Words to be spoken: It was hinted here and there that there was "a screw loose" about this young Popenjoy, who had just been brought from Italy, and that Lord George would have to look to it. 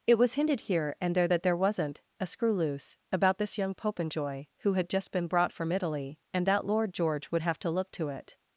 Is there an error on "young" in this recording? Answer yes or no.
no